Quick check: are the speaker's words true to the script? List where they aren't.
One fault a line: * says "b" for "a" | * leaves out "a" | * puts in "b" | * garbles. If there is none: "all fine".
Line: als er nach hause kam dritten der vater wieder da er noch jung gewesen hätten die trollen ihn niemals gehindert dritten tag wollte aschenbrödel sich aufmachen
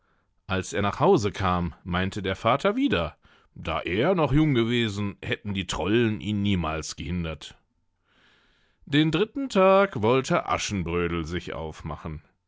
* says "meinte" for "dritten"
* puts in "den"